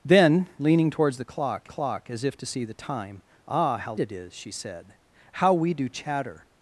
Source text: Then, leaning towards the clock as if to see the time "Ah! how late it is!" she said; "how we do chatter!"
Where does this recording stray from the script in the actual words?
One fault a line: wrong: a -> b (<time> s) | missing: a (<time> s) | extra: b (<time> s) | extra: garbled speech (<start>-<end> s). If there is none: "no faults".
extra: clock (1.7 s)
missing: late (3.9 s)